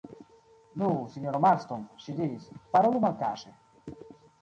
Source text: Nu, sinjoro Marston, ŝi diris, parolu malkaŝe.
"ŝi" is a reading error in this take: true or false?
false